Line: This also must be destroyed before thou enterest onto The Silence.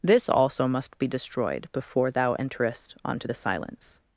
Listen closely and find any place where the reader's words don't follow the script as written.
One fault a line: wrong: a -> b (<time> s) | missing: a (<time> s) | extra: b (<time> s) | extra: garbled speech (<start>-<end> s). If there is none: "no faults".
no faults